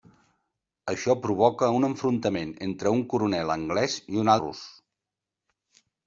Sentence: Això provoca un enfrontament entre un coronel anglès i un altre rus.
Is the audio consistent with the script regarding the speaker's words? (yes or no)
no